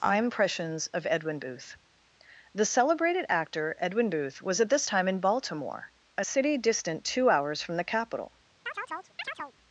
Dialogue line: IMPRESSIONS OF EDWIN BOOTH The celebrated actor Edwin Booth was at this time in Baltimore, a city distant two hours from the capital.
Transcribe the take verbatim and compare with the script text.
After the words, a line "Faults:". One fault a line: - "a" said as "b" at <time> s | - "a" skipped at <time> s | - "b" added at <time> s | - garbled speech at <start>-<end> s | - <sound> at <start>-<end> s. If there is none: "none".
IMPRESSIONS OF EDWIN BOOTH The celebrated actor Edwin Booth was at this time in Baltimore, a city distant two hours from the capital.
Faults:
- chirp at 8.7-9.5 s